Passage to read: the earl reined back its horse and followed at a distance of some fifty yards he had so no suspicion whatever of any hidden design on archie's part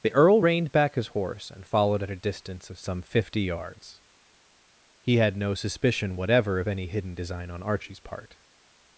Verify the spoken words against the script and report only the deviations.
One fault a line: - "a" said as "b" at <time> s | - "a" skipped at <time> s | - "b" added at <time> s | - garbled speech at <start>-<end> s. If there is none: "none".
- "its" said as "his" at 0.9 s
- "so" skipped at 5.4 s